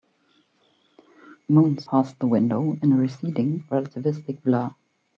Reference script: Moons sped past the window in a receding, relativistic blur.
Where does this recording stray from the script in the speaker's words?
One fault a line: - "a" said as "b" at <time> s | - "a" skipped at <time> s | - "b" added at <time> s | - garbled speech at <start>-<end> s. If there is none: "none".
- "sped" skipped at 1.9 s